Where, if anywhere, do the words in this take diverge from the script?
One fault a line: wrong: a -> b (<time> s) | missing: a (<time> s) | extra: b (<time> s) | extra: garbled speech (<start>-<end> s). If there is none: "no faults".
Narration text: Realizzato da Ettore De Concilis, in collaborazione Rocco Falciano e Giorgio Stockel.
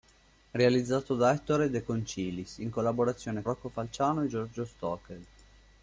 no faults